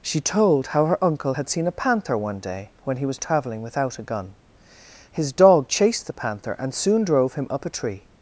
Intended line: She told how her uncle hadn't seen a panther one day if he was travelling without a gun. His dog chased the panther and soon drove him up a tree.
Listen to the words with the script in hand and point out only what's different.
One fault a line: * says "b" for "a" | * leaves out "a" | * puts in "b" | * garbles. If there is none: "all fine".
* says "had" for "hadn't"
* says "when" for "if"